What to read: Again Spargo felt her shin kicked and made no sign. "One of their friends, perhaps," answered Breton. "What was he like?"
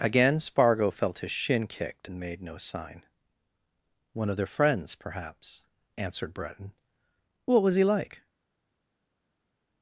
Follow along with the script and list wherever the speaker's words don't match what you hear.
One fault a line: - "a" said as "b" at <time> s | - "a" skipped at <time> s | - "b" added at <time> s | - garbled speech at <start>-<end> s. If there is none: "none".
- "her" said as "his" at 1.2 s